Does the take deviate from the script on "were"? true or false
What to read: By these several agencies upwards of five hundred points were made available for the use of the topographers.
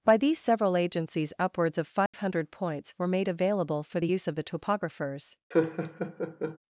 false